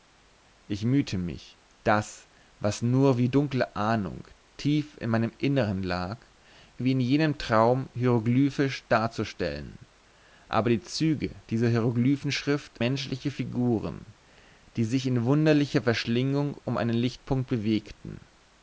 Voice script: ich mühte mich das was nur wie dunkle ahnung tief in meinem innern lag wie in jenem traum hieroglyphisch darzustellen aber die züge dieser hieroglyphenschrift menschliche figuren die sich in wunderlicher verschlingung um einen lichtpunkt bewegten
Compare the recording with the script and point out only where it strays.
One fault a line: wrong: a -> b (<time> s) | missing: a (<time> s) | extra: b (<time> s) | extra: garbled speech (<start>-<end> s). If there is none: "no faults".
no faults